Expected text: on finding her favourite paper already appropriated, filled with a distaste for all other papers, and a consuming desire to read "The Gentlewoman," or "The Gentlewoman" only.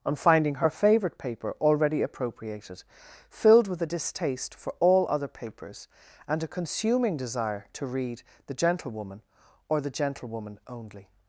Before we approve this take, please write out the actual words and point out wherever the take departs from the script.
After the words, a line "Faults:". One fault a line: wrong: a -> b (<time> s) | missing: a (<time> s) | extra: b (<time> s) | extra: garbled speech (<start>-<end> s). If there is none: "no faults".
on finding her favourite paper already appropriated, filled with a distaste for all other papers, and a consuming desire to read "The Gentlewoman," or "The Gentlewoman" only.
Faults:
no faults